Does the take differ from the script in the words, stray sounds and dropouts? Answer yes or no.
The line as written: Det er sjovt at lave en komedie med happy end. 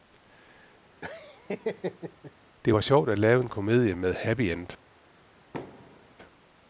yes